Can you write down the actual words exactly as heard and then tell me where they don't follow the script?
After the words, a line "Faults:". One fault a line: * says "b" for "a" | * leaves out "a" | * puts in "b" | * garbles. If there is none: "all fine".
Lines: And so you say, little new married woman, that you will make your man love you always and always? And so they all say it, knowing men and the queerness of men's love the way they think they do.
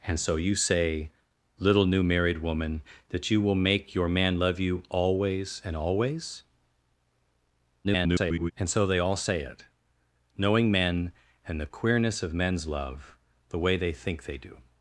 And so you say, little new married woman, that you will make your man love you always and always? [garbled] And so they all say it, knowing men and the queerness of men's love the way they think they do.
Faults:
* garbles